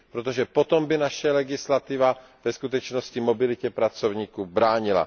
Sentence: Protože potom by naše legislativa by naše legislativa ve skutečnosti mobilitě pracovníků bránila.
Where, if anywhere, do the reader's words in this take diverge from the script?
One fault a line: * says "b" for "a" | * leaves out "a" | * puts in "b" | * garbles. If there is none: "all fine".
* leaves out "by naše legislativa"